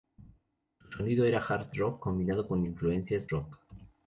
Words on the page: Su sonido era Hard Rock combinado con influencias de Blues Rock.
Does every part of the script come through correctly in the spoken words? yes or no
no